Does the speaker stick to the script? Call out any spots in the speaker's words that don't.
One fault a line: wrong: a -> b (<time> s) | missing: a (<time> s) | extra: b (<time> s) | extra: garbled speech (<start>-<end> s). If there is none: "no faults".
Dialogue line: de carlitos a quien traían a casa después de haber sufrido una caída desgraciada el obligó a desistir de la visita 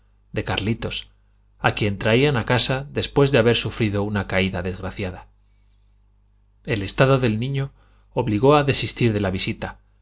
extra: estado del niño (6.8 s)